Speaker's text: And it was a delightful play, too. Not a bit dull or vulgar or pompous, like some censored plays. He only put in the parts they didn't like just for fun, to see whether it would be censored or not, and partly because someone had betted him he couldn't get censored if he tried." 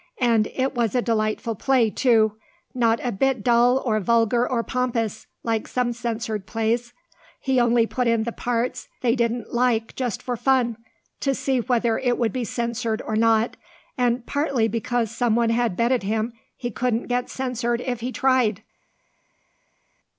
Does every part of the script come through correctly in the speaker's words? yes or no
yes